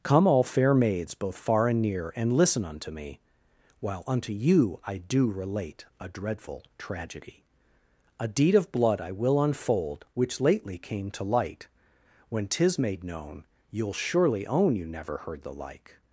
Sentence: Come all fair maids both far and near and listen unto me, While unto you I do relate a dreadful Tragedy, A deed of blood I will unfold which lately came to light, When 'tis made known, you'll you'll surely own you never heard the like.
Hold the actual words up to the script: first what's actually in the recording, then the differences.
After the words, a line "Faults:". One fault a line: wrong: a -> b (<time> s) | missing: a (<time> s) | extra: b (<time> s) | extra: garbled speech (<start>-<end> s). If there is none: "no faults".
Come all fair maids both far and near and listen unto me, While unto you I do relate a dreadful Tragedy, A deed of blood I will unfold which lately came to light, When 'tis made known, you'll surely own you never heard the like.
Faults:
missing: you'll (13.9 s)